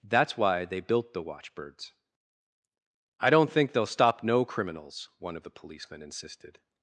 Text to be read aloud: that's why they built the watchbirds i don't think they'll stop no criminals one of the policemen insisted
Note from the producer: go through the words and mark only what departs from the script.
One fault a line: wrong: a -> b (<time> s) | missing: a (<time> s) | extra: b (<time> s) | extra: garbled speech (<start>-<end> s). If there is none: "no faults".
no faults